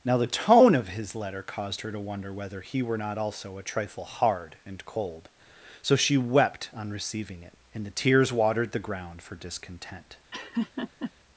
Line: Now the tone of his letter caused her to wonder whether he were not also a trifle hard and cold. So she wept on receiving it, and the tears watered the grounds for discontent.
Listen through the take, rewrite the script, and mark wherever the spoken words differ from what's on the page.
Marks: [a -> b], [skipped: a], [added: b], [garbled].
Now the tone of his letter caused her to wonder whether he were not also a trifle hard and cold. So she wept on receiving it, and the tears watered the [grounds -> ground] for discontent.